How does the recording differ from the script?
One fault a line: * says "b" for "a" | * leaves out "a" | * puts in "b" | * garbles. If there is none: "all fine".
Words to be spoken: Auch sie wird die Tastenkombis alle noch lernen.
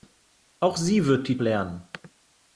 * leaves out "Tastenkombis alle noch"